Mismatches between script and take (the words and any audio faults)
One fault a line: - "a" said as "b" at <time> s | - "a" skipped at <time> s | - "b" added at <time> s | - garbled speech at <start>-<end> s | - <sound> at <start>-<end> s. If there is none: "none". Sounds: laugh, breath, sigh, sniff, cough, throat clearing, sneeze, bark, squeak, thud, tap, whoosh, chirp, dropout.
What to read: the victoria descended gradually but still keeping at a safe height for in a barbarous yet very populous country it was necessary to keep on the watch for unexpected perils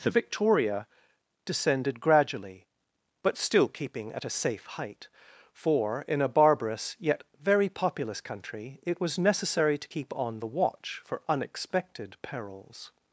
none